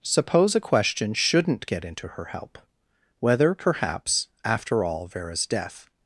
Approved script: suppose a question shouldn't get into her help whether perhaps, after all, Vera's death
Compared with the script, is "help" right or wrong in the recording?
right